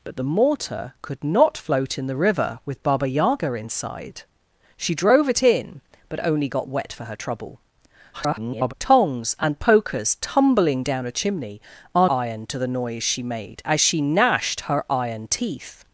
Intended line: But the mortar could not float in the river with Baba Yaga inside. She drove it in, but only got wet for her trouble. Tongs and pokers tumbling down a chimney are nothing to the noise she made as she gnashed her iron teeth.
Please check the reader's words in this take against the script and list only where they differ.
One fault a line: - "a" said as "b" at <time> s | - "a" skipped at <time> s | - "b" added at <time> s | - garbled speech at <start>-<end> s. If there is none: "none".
- garbled speech at 8.1-8.7 s
- "nothing" said as "iron" at 12.1 s